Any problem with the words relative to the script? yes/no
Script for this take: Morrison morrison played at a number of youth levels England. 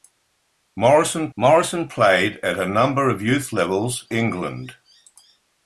no